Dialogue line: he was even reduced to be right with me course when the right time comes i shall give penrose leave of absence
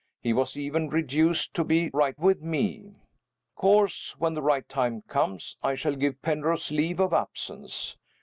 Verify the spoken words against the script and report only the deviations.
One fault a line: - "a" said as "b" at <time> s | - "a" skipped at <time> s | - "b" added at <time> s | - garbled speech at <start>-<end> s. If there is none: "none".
none